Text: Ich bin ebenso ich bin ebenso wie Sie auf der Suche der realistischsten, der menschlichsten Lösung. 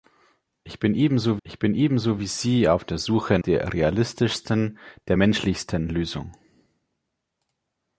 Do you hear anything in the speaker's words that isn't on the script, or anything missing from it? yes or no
no